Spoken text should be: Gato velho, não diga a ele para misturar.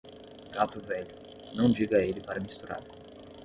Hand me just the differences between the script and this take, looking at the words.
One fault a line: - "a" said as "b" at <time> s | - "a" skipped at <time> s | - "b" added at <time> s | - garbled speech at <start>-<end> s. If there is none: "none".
none